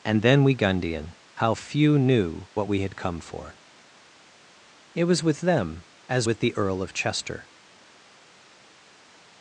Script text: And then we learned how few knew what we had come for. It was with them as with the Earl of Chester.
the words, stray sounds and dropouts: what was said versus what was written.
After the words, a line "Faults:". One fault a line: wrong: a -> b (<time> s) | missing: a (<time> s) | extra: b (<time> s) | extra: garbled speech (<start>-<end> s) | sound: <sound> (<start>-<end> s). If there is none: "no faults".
And then we gundian how few knew what we had come for. It was with them as with the Earl of Chester.
Faults:
wrong: learned -> gundian (0.6 s)